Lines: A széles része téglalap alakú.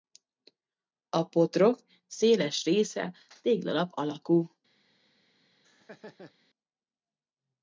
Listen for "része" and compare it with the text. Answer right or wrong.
right